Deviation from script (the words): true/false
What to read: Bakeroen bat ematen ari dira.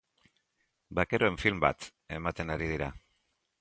true